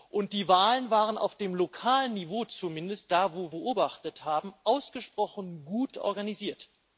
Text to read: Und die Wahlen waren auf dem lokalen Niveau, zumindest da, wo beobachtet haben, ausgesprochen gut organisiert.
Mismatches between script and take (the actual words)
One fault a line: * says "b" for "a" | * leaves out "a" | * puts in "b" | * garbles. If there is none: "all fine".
all fine